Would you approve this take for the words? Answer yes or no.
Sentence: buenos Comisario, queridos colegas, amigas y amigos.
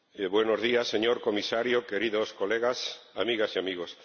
no